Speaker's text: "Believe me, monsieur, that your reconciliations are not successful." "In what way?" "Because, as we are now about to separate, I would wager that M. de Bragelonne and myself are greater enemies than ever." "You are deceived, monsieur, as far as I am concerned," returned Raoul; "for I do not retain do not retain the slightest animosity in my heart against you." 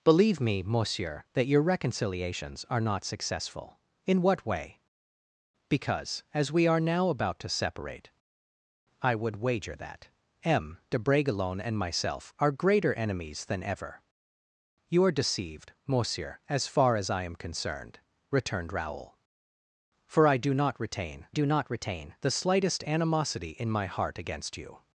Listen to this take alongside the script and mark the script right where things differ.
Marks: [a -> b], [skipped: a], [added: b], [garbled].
"Believe me, monsieur, that your reconciliations are not successful." "In what way?" "Because, as we are now about to separate, I would wager that M. de Bragelonne and myself are greater enemies than ever." "You are deceived, monsieur, as far as I am concerned," returned Raoul; "for I do not retain do not retain the slightest animosity in my heart against you."